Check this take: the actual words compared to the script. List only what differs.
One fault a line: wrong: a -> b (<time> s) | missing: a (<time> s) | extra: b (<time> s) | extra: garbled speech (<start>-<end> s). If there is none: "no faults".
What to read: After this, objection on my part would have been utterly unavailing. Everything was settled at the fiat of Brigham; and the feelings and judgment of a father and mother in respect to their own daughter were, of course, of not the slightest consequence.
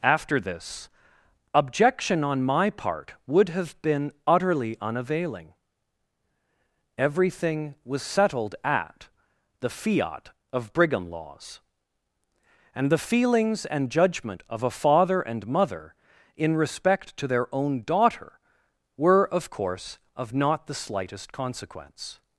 extra: laws (11.1 s)